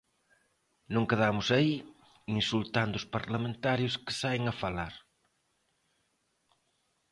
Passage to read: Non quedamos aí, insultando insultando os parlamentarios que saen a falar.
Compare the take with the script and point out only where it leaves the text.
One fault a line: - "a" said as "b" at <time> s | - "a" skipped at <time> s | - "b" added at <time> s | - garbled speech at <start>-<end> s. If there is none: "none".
- "insultando" skipped at 3.0 s